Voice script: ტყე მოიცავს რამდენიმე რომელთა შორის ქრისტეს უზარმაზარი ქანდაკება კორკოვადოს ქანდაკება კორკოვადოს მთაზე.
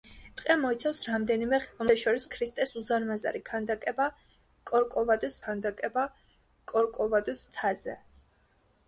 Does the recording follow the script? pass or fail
pass